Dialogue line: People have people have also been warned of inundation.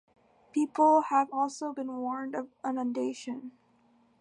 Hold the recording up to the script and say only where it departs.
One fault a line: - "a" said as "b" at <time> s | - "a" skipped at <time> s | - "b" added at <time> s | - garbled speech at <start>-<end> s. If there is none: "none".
- "people have" skipped at 1.3 s